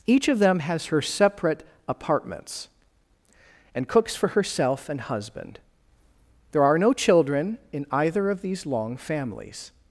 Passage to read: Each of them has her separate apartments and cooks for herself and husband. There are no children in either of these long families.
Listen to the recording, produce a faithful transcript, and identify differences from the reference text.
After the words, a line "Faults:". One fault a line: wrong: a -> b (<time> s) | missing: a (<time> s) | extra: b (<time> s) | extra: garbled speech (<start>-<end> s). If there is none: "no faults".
Each of them has her separate apartments and cooks for herself and husband. There are no children in either of these long families.
Faults:
no faults